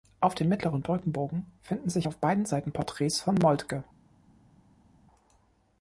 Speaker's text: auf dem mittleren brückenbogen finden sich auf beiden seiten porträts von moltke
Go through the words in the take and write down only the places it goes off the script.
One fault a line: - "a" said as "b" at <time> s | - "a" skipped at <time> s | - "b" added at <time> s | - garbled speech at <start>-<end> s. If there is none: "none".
none